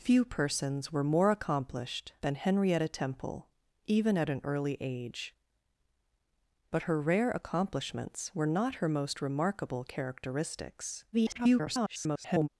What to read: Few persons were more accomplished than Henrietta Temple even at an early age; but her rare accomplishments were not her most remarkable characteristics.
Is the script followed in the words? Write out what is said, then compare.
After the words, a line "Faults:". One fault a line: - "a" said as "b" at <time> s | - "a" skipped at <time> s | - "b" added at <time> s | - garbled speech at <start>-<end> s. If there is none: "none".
Few persons were more accomplished than Henrietta Temple even at an early age; but her rare accomplishments were not her most remarkable characteristics. [garbled]
Faults:
- garbled speech at 11.1-12.5 s